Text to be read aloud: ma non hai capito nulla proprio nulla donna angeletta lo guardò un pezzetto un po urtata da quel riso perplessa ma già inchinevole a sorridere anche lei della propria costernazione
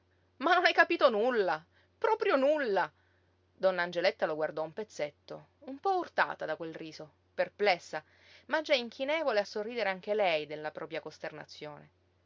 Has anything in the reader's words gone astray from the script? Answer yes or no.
no